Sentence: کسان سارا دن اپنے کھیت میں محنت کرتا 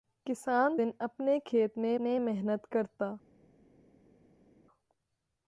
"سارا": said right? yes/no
no